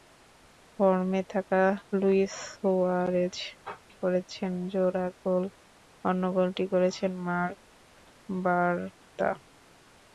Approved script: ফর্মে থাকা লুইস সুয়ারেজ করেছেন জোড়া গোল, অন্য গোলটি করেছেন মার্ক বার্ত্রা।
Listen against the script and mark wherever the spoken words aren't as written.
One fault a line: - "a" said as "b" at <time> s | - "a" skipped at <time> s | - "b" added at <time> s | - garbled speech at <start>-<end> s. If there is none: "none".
none